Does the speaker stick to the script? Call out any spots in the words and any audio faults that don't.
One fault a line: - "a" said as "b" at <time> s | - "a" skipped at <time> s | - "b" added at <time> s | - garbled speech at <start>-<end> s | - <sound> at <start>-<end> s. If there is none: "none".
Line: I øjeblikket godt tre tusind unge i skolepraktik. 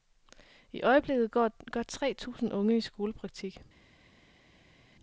- "går" added at 1.3 s